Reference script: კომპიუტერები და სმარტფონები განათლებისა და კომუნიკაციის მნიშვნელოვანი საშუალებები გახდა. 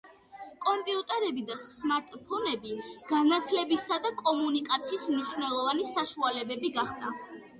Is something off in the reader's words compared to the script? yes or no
no